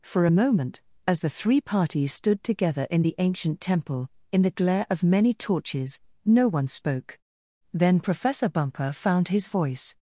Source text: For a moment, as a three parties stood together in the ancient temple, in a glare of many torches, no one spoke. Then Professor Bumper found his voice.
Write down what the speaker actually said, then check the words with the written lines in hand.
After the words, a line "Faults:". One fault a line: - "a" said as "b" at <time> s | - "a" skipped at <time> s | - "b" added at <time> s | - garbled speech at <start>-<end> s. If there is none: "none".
For a moment, as the three parties stood together in the ancient temple, in the glare of many torches, no one spoke. Then Professor Bumper found his voice.
Faults:
- "a" said as "the" at 1.2 s
- "a" said as "the" at 4.4 s